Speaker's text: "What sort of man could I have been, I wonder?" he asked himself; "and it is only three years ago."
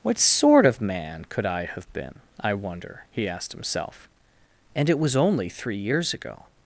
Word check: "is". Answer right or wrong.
wrong